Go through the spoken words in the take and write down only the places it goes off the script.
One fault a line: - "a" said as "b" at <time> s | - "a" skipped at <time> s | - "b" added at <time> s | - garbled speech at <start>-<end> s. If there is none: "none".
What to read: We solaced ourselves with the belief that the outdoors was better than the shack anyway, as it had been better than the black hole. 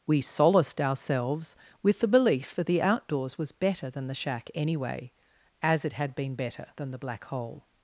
none